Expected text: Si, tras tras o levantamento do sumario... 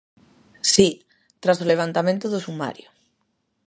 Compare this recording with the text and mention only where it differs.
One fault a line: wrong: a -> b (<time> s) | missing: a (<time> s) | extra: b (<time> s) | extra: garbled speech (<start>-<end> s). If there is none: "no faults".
missing: tras (1.6 s)